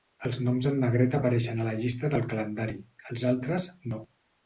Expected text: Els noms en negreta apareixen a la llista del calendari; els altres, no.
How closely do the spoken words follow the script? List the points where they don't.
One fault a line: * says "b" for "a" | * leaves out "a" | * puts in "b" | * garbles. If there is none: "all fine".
all fine